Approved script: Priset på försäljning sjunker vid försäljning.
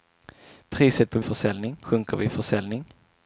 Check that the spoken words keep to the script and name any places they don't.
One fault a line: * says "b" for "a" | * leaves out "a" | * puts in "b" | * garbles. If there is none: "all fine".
all fine